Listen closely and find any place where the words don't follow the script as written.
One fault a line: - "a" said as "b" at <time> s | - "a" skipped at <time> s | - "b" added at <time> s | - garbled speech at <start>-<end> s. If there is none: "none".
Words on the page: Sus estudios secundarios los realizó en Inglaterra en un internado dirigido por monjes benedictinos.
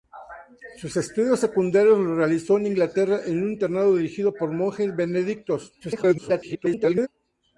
- garbled speech at 5.8-7.1 s